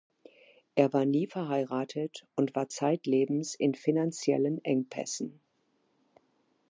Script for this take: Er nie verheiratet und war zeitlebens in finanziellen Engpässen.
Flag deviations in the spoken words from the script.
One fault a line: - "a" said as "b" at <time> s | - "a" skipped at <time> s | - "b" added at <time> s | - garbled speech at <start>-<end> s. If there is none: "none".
- "war" added at 0.9 s